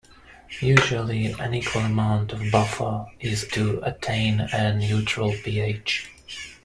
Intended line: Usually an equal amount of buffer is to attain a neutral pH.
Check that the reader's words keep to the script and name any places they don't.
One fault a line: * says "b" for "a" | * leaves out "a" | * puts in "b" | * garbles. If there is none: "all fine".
all fine